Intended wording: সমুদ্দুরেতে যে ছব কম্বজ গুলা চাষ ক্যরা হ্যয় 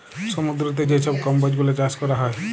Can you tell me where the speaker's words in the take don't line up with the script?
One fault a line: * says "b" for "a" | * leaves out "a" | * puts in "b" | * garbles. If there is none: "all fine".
all fine